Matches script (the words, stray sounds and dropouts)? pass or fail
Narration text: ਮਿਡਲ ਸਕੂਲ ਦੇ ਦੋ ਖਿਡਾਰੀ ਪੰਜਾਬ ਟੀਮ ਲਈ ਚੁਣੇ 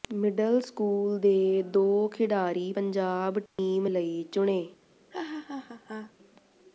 fail